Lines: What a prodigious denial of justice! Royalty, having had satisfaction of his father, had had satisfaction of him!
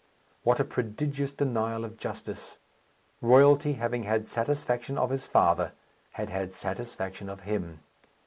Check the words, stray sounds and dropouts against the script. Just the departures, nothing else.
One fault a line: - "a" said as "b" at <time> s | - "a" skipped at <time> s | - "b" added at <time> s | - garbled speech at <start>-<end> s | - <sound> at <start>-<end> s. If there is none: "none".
none